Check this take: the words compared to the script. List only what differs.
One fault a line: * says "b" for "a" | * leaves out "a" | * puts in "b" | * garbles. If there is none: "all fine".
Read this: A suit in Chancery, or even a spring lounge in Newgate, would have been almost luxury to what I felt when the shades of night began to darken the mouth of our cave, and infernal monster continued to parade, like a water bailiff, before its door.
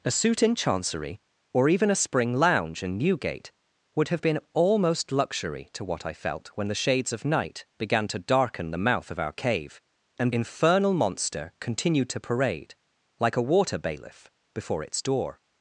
all fine